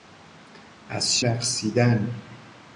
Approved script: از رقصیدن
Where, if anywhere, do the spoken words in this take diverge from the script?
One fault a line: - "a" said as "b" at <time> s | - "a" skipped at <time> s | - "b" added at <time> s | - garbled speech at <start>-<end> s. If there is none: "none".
none